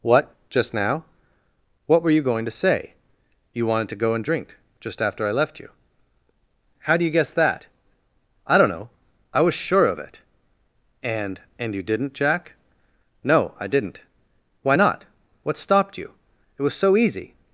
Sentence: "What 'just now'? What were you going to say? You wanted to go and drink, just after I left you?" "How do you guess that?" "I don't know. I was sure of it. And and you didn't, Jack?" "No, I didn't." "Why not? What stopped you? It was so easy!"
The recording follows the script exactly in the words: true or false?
true